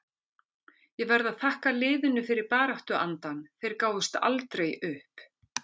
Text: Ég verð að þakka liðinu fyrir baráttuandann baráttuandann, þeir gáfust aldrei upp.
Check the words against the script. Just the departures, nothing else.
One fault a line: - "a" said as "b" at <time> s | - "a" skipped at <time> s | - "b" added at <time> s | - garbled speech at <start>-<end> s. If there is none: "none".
- "baráttuandann" skipped at 3.4 s